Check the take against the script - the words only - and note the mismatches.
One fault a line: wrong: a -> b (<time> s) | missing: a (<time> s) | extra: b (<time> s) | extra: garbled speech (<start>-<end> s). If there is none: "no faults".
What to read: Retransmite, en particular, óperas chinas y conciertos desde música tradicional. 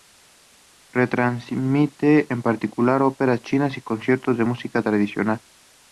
wrong: desde -> de (4.3 s)